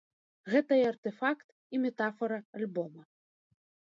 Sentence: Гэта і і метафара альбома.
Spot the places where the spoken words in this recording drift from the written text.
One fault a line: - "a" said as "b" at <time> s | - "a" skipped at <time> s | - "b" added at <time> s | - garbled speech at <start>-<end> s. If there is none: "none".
- "артэфакт" added at 0.9 s